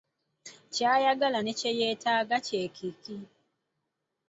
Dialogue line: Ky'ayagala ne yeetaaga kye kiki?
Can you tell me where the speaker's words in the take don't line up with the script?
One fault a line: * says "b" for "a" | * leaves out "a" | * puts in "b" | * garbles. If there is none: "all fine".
* puts in "kye"